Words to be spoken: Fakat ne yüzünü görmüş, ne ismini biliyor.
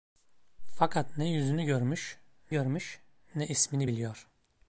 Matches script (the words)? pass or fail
fail